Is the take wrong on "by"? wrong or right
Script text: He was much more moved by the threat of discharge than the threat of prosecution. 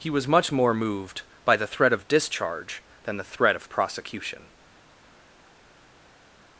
right